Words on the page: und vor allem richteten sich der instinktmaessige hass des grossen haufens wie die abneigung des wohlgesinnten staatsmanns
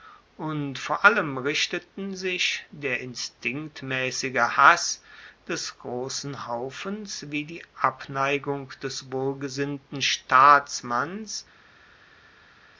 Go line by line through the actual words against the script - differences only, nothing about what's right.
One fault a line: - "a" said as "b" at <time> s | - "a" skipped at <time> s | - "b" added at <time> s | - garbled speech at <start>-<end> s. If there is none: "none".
none